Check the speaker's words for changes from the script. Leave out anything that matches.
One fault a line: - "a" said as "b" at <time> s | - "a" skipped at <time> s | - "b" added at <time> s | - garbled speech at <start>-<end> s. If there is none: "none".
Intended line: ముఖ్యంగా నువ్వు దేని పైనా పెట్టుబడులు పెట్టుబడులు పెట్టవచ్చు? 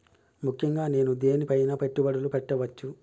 - "నువ్వు" said as "నేను" at 0.9 s
- "పెట్టుబడులు" skipped at 2.3 s